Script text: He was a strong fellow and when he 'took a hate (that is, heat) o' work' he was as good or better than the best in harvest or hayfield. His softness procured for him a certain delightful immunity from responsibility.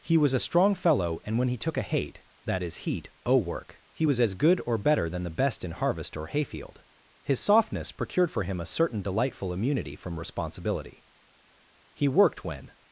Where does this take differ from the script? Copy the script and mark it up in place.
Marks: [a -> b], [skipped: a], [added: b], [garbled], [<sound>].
He was a strong fellow and when he 'took a hate (that is, heat) o' work' he was as good or better than the best in harvest or hayfield. His softness procured for him a certain delightful immunity from responsibility. [added: He worked when]